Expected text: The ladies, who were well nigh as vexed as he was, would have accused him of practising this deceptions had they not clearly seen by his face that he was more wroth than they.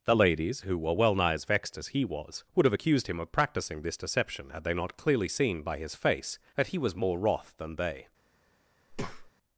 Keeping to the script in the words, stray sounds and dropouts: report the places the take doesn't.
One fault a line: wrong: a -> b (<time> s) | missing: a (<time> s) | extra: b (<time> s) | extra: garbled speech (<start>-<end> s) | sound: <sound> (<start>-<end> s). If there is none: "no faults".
wrong: deceptions -> deception (4.0 s)
sound: breath (8.9-9.3 s)